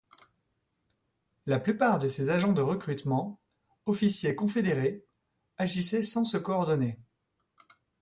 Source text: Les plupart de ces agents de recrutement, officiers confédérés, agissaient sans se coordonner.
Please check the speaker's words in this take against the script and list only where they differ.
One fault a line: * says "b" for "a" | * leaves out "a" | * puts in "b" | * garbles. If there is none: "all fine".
* says "La" for "Les"